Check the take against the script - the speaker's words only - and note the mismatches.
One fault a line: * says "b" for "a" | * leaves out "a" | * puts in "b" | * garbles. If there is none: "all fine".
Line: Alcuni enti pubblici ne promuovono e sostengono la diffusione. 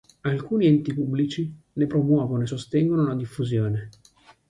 all fine